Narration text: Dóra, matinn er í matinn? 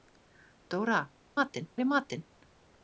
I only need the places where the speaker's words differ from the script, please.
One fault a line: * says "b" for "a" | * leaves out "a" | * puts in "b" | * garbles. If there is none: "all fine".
all fine